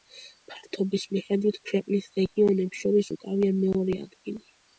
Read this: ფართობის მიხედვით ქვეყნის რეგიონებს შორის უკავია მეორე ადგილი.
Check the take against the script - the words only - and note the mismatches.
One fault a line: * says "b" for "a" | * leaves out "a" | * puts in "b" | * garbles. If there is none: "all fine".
all fine